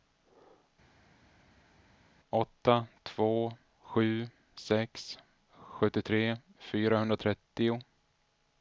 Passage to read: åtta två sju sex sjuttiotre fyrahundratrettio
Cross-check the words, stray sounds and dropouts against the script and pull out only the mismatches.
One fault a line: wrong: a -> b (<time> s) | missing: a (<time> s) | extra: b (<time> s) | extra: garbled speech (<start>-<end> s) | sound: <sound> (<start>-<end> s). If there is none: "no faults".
no faults